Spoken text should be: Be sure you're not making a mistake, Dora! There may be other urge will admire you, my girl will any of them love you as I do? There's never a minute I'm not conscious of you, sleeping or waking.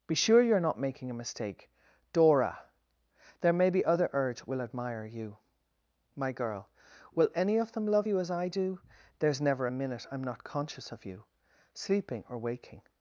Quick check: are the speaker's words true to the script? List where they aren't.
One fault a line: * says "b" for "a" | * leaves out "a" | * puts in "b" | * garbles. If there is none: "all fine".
all fine